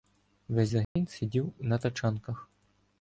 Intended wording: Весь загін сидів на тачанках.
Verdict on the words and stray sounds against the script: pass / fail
fail